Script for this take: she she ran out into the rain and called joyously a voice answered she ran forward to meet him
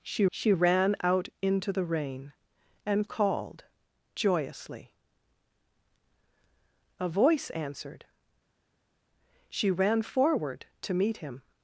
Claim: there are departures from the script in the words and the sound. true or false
false